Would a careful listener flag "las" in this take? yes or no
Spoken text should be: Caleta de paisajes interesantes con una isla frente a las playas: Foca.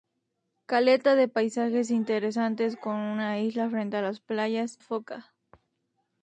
no